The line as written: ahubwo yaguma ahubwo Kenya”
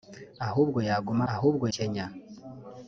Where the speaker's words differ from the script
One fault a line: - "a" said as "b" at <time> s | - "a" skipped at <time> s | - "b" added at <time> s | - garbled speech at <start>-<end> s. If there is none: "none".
none